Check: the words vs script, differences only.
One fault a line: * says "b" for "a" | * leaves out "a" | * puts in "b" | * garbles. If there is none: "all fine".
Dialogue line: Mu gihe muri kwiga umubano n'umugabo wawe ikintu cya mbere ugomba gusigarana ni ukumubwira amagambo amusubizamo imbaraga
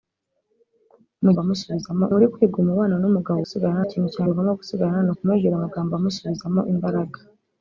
* says "amusubizamo" for "gihe"
* says "gusigarana" for "wawe"
* leaves out "mbere"